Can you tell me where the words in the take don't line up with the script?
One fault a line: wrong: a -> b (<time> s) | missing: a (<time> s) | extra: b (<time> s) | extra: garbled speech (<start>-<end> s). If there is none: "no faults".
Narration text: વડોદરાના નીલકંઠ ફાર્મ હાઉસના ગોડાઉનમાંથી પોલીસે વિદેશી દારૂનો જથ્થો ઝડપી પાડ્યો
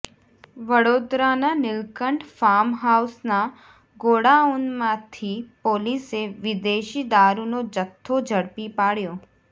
no faults